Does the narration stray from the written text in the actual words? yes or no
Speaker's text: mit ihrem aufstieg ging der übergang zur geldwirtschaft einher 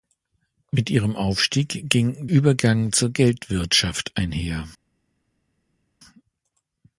yes